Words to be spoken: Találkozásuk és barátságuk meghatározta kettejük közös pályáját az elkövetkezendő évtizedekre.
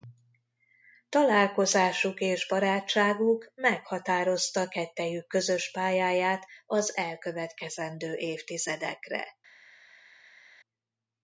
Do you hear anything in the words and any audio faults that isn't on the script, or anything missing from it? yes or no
no